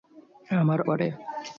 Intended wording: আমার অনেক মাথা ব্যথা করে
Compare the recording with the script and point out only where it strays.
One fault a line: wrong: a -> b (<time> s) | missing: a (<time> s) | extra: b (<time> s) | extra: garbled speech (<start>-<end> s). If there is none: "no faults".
missing: অনেক মাথা ব্যথা (0.8 s)